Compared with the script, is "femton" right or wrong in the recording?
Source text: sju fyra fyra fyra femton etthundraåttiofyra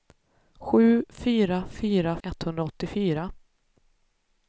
wrong